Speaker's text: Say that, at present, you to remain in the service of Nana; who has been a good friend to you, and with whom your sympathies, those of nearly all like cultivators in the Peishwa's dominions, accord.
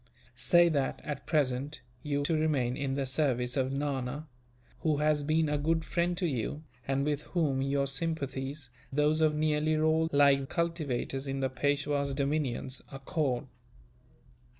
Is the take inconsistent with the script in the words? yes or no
no